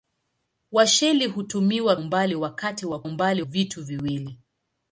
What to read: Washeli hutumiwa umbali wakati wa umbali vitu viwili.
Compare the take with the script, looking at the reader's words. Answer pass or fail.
pass